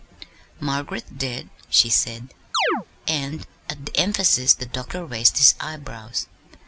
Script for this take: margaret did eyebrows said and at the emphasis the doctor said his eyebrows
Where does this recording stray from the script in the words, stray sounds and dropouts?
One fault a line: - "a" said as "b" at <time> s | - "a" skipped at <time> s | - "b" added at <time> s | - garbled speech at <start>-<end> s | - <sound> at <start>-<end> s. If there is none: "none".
- "eyebrows" said as "she" at 1.7 s
- chirp at 2.5-2.9 s
- "said" said as "raised" at 5.1 s